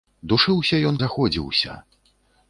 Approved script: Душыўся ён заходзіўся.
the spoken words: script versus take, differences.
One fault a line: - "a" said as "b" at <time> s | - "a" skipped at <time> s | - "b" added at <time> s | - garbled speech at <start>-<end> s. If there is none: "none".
none